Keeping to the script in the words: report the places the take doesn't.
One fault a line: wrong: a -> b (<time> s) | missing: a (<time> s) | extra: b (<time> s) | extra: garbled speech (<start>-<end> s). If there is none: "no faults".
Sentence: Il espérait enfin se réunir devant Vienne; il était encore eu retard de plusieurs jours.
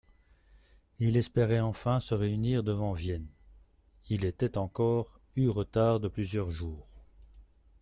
no faults